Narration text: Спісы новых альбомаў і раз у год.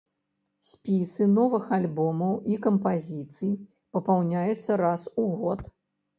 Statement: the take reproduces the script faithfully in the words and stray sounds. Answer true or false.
false